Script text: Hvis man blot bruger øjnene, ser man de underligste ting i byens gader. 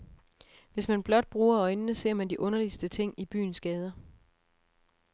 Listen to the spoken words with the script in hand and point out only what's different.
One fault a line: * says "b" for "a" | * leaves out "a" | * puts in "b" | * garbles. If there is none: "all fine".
all fine